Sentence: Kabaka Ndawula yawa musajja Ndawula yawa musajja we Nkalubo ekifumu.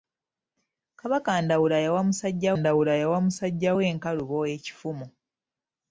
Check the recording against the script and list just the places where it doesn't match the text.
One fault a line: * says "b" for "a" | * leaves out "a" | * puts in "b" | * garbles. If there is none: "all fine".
all fine